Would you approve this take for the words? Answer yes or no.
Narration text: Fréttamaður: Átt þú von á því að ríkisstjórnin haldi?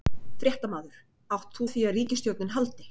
no